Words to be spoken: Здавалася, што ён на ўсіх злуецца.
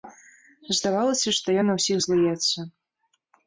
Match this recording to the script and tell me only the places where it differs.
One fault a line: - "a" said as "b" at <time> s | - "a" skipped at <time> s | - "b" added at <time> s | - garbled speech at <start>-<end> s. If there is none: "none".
none